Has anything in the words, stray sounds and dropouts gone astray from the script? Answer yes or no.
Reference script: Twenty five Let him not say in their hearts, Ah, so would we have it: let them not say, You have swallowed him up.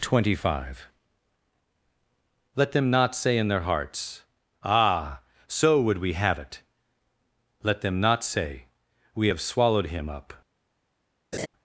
yes